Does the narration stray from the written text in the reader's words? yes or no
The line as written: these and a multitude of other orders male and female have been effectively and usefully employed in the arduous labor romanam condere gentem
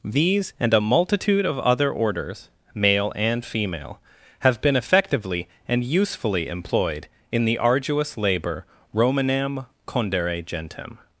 no